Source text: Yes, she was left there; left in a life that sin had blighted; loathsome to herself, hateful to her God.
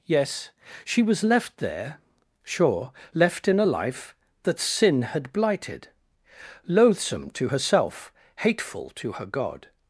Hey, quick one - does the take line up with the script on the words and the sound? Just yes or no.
no